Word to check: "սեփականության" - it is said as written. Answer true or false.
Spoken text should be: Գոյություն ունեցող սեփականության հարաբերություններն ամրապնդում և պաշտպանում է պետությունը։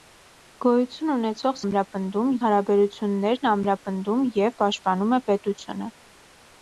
false